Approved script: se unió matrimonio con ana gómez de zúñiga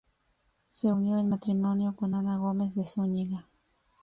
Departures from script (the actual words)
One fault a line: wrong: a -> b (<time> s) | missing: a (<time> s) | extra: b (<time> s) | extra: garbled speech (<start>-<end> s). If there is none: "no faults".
extra: en (1.2 s)